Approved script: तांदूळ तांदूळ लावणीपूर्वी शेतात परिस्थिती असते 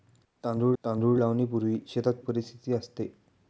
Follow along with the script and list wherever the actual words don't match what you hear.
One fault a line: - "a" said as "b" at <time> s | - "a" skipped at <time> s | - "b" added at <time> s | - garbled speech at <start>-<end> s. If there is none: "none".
none